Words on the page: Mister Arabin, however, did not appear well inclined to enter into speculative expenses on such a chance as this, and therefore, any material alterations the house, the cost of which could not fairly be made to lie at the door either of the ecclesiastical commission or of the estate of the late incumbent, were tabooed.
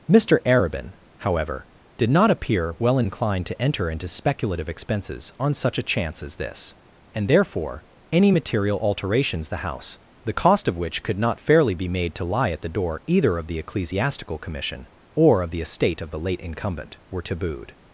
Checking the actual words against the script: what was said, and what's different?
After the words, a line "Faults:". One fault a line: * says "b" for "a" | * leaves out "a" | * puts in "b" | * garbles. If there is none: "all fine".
Mister Arabin, however, did not appear well inclined to enter into speculative expenses on such a chance as this, and therefore, any material alterations the house, the cost of which could not fairly be made to lie at the door either of the ecclesiastical commission or of the estate of the late incumbent, were tabooed.
Faults:
all fine